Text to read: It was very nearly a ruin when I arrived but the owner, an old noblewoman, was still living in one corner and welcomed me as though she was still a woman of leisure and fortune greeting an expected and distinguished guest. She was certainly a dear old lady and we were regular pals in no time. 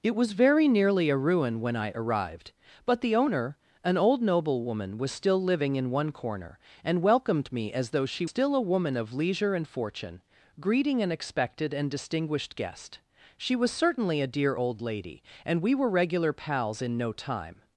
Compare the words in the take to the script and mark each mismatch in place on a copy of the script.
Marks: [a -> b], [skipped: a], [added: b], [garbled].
It was very nearly a ruin when I arrived but the owner, an old noblewoman, was still living in one corner and welcomed me as though she [skipped: was] still a woman of leisure and fortune greeting an expected and distinguished guest. She was certainly a dear old lady and we were regular pals in no time.